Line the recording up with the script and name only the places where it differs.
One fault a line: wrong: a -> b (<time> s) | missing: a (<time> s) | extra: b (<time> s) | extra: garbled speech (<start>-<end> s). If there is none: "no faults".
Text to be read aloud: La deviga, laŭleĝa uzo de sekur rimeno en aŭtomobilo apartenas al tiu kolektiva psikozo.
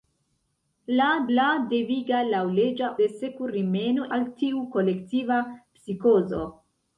extra: la (1.4 s)
missing: uzo (2.9 s)
missing: en aŭtomobilo apartenas (4.1 s)